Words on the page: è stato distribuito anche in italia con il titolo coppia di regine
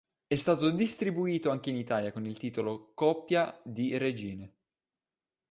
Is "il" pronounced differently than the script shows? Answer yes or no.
no